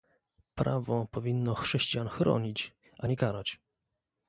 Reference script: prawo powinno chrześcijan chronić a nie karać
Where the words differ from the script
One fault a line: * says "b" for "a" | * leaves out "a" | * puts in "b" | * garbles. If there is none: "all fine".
all fine